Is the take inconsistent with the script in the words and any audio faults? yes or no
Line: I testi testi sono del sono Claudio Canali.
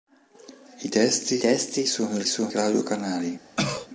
yes